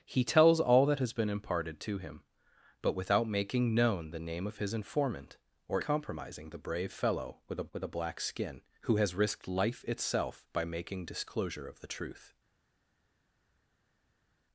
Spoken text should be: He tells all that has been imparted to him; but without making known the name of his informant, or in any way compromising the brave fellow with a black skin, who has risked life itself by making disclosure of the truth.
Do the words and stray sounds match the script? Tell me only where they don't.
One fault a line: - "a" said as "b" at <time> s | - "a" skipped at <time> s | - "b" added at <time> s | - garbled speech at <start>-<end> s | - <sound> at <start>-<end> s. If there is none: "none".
- "in any way" skipped at 5.8 s
- "with a" added at 7.7 s